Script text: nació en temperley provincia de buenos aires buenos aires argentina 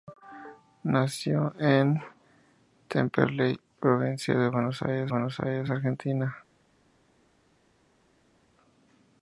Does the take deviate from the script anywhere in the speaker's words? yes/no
no